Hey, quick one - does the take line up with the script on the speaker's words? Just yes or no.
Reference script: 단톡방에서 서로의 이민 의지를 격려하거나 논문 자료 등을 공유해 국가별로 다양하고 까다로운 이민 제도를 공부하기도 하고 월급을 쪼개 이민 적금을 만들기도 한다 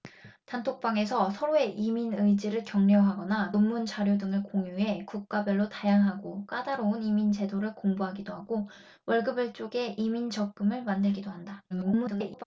no